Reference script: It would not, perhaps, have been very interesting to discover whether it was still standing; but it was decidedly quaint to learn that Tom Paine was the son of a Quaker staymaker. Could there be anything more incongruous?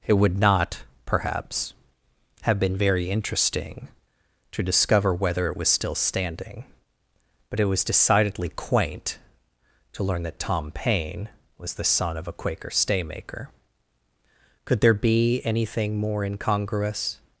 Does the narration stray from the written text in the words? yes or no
no